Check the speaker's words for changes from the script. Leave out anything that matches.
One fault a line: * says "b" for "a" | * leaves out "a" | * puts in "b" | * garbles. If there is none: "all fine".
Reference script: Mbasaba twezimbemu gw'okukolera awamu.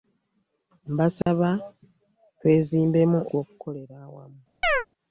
all fine